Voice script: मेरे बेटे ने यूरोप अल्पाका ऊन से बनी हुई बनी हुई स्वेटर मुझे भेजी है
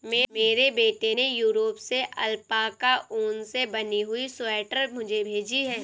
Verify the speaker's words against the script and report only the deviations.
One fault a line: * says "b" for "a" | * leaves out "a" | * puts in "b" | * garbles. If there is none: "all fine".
* puts in "से"
* leaves out "बनी हुई"